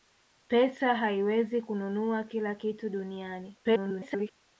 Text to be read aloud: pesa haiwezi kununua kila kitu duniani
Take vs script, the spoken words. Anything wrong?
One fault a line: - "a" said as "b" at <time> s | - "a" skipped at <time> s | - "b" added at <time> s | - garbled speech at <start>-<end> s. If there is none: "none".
- garbled speech at 3.6-4.3 s